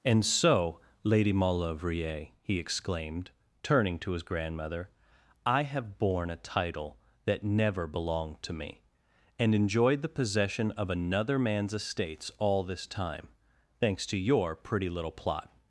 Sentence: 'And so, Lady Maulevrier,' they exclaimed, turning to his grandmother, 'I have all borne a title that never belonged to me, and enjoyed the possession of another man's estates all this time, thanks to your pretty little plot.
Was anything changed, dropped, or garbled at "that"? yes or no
no